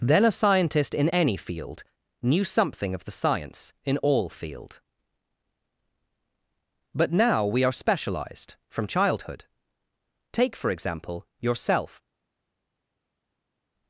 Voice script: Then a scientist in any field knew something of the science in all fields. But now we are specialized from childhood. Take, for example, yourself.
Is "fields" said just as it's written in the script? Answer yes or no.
no